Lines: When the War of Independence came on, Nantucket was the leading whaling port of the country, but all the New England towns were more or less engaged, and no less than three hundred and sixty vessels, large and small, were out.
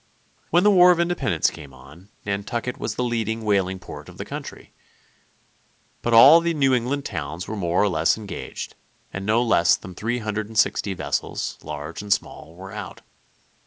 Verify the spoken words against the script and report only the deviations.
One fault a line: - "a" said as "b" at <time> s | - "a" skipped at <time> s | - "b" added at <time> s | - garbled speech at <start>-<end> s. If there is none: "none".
none